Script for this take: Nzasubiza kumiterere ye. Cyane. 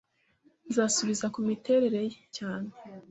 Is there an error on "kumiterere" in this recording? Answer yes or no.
no